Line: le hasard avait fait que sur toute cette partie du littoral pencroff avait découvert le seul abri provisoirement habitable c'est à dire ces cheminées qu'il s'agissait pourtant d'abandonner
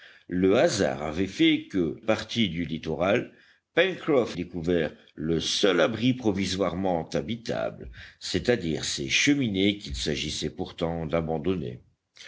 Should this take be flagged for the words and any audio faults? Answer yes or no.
yes